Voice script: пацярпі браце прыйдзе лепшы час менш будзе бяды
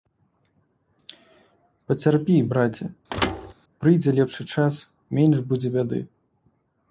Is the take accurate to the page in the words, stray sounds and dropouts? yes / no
no